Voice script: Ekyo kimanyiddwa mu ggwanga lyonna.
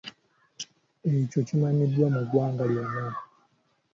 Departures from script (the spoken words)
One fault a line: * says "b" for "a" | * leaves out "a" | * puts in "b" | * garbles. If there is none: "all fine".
all fine